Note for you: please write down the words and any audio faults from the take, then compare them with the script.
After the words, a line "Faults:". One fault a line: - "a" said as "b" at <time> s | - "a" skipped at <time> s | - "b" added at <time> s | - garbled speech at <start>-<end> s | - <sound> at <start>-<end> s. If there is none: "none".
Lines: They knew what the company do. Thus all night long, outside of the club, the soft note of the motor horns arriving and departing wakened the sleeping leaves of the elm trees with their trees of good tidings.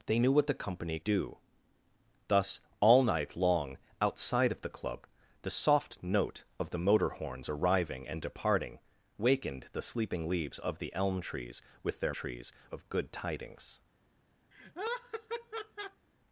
They knew what the company do. Thus all night long, outside of the club, the soft note of the motor horns arriving and departing wakened the sleeping leaves of the elm trees with their trees of good tidings.
Faults:
- laugh at 14.5-16.1 s